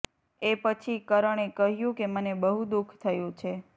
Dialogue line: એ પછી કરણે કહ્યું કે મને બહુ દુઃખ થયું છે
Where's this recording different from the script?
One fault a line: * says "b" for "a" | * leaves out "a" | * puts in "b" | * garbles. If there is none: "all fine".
all fine